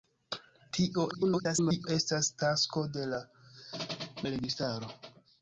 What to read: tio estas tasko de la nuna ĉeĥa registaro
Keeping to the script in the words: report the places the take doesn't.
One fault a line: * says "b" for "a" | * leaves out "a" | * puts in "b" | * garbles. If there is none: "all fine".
* garbles
* leaves out "nuna ĉeĥa"